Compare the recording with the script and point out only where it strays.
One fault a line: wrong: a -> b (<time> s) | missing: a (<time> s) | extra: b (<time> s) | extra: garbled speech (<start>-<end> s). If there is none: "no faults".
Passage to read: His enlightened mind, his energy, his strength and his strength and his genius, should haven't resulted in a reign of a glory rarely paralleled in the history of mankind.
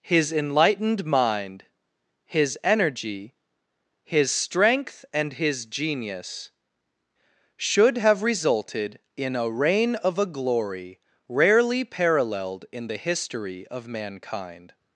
missing: strength and his (5.7 s)
wrong: haven't -> have (8.0 s)